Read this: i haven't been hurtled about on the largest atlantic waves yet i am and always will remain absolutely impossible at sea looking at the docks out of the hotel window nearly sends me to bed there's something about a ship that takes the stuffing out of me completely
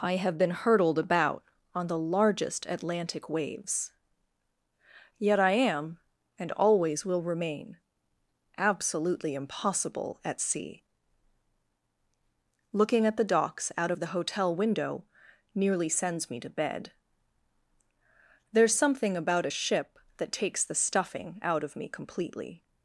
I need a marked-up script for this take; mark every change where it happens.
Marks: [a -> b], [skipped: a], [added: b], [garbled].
i [haven't -> have] been hurtled about on the largest atlantic waves yet i am and always will remain absolutely impossible at sea looking at the docks out of the hotel window nearly sends me to bed there's something about a ship that takes the stuffing out of me completely